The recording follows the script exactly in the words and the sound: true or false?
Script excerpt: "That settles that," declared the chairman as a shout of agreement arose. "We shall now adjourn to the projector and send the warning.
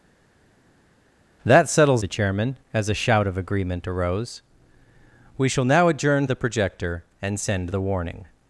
false